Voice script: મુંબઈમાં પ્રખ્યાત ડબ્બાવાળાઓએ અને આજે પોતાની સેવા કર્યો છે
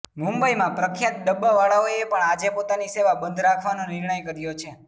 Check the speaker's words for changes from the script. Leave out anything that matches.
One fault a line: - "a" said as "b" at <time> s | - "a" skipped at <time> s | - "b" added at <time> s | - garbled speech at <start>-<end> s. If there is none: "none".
- "અને" said as "પણ" at 2.0 s
- "બંધ રાખવાનો નિર્ણય" added at 3.2 s